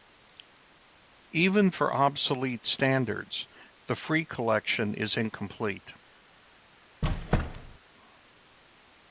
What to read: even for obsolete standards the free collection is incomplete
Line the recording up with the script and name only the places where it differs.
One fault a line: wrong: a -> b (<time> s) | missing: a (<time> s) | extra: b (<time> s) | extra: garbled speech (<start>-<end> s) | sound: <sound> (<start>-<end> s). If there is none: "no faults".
sound: squeak (7.0-7.8 s)